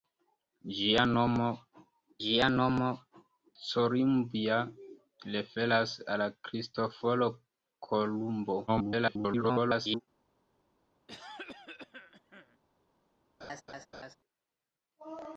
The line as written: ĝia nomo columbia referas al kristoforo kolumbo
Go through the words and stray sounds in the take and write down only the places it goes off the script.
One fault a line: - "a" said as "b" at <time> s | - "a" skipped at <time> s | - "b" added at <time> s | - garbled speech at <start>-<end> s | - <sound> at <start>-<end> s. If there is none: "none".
- "ĝia nomo" added at 2.2 s
- garbled speech at 8.7-10.0 s
- cough at 11.1-12.6 s
- laugh at 13.4-14.2 s